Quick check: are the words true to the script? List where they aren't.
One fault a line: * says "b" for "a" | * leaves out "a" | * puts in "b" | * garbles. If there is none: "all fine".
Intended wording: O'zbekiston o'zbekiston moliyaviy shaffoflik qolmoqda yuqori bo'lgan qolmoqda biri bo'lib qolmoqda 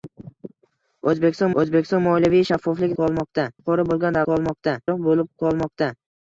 all fine